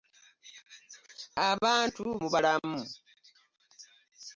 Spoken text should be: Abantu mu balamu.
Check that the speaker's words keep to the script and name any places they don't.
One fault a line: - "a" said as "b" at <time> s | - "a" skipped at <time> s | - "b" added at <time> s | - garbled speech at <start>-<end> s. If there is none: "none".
none